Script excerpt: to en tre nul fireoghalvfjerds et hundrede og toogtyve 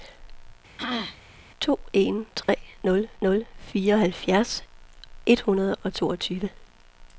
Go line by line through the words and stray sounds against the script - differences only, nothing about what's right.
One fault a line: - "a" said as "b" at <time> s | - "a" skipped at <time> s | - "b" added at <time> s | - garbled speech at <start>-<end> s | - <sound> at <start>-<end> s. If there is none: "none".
- throat clearing at 0.8-1.2 s
- dropout at 2.4-2.5 s
- "nul" added at 3.2 s